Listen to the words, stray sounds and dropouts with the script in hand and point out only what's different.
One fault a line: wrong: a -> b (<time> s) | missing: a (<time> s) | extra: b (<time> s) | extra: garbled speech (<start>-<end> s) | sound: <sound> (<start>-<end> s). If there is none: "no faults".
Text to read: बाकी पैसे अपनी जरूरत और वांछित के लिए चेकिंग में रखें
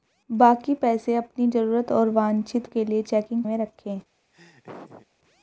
sound: laugh (4.3-5.1 s)